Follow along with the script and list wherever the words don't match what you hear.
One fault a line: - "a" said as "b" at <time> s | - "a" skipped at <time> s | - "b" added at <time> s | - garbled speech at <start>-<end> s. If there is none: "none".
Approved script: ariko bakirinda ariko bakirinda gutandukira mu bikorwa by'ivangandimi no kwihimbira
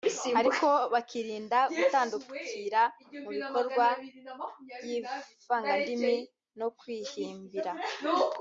- "ariko bakirinda" skipped at 1.6 s